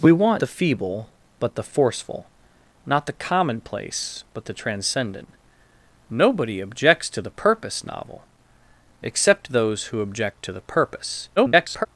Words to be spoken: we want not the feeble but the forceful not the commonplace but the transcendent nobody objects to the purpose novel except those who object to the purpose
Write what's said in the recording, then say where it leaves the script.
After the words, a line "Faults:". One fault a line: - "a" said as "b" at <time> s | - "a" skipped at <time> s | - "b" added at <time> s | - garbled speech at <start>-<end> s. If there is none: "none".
we want the feeble but the forceful not the commonplace but the transcendent nobody objects to the purpose novel except those who object to the purpose [garbled]
Faults:
- "not" skipped at 0.4 s
- garbled speech at 11.4-11.9 s